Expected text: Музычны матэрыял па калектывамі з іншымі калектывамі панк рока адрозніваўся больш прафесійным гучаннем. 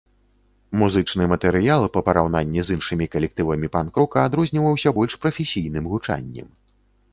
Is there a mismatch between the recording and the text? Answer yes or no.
yes